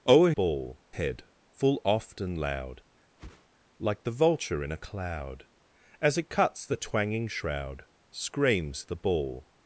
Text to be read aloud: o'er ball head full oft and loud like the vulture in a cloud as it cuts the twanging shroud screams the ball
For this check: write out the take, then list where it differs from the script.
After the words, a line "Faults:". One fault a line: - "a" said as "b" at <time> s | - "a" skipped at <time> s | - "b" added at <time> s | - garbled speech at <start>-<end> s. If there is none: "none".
o'er ball head full oft and loud like the vulture in a cloud as it cuts the twanging shroud screams the ball
Faults:
none